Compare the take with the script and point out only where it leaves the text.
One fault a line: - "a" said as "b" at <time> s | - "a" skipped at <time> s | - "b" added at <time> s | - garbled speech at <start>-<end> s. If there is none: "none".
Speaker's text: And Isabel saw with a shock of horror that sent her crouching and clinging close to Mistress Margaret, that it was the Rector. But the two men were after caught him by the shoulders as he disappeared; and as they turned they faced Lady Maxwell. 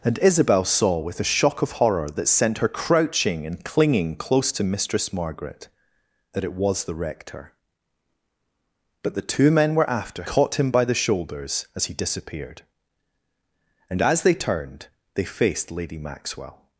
none